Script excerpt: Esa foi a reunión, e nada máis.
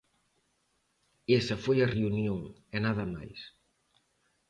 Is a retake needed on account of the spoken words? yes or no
no